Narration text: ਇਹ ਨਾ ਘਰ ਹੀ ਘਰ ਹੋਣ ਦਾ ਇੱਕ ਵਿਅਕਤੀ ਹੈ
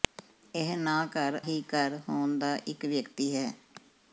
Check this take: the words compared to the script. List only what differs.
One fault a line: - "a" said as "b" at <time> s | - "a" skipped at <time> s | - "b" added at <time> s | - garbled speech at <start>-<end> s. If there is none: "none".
none